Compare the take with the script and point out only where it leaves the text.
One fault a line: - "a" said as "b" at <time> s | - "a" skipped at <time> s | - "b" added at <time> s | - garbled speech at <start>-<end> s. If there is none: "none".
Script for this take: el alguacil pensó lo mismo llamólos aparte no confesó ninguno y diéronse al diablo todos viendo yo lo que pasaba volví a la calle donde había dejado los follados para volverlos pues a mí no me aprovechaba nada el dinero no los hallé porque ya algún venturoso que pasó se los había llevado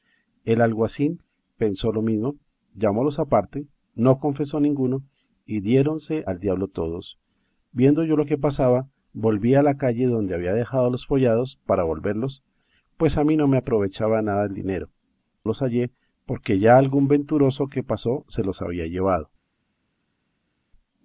- "no" skipped at 14.9 s